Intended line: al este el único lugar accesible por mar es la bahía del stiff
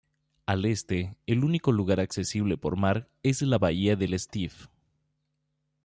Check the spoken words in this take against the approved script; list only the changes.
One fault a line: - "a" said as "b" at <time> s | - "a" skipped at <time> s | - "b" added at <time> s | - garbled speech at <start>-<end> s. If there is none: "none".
none